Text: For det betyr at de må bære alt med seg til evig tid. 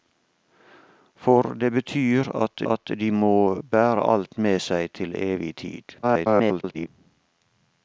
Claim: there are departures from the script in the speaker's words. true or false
true